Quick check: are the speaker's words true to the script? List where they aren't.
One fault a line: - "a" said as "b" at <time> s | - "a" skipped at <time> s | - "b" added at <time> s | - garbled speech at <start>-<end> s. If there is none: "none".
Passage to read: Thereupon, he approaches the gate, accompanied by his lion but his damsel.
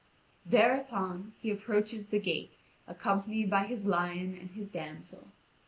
- "but" said as "and" at 4.4 s